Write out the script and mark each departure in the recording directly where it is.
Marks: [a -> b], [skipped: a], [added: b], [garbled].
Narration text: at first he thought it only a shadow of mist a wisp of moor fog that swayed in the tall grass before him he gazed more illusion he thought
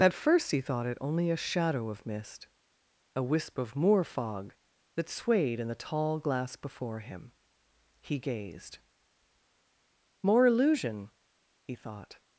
at first he thought it only a shadow of mist a wisp of moor fog that swayed in the tall [grass -> glass] before him he gazed more illusion he thought